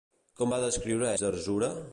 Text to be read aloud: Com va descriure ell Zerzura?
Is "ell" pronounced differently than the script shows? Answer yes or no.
yes